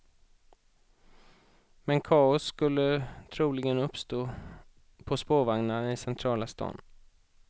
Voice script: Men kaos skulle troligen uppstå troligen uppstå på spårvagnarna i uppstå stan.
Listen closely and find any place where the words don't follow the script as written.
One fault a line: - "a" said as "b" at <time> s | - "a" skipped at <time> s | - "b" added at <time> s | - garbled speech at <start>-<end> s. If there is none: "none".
- "troligen uppstå" skipped at 4.3 s
- "uppstå" said as "centrala" at 6.0 s